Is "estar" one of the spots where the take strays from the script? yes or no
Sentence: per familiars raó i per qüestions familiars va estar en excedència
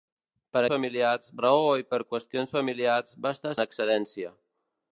no